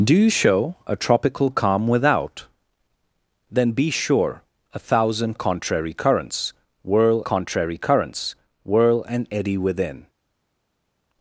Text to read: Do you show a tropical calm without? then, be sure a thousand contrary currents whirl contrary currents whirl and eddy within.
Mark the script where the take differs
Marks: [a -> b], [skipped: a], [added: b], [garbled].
Do you show a tropical calm without? then, be sure a thousand contrary currents whirl contrary currents whirl and eddy within.